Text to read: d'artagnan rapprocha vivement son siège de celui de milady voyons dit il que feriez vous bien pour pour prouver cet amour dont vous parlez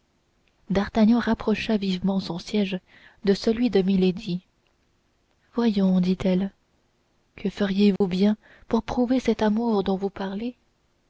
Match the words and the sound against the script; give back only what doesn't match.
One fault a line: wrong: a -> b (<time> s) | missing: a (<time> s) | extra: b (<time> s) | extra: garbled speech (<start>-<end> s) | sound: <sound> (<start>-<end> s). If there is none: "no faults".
wrong: il -> elle (6.2 s)
sound: dropout (8.0-8.0 s)
missing: pour (8.8 s)